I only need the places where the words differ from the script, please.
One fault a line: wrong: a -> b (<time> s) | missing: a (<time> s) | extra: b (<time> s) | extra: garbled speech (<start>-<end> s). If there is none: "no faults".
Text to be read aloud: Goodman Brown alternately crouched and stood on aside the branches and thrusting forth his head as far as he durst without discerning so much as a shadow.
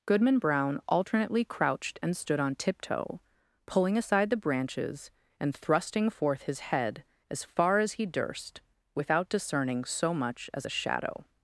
extra: tiptoe pulling (2.5 s)